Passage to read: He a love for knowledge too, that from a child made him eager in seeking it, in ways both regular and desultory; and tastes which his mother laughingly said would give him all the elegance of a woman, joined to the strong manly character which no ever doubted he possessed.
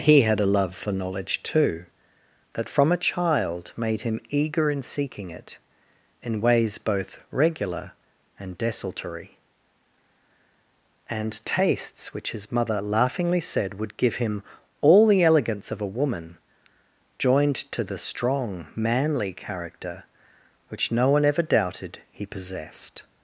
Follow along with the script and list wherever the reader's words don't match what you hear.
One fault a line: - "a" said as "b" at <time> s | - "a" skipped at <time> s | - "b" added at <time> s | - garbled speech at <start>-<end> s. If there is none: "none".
- "had" added at 0.2 s
- "one" added at 21.1 s